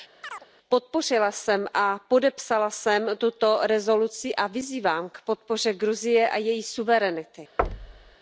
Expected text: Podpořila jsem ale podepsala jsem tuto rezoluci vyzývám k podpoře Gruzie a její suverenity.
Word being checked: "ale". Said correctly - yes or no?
no